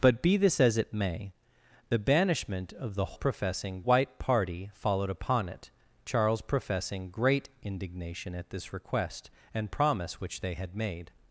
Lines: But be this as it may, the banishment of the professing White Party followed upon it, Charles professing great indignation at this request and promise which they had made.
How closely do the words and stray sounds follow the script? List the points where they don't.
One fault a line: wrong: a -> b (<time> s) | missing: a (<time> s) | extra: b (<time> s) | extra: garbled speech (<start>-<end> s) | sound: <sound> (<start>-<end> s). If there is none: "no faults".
no faults